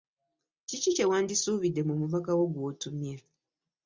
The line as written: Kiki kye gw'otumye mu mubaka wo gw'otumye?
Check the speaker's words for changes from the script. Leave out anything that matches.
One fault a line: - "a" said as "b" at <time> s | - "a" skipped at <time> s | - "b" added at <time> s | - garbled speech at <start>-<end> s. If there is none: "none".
- "gw'otumye" said as "wandisuubidde" at 1.1 s